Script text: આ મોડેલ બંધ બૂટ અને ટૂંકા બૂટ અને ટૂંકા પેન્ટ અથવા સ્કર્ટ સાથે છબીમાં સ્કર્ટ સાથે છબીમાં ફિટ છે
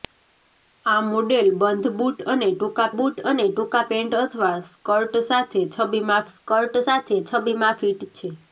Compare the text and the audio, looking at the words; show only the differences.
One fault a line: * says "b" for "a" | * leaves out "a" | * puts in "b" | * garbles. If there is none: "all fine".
all fine